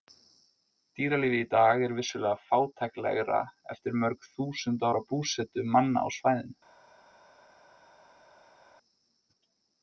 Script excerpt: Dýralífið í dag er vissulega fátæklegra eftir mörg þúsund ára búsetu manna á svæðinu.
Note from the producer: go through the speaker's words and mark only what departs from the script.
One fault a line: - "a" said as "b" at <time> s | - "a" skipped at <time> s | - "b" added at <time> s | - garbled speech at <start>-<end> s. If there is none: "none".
none